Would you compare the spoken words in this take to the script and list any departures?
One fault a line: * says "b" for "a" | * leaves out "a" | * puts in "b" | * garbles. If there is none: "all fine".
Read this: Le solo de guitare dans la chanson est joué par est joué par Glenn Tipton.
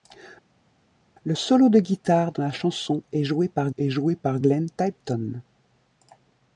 all fine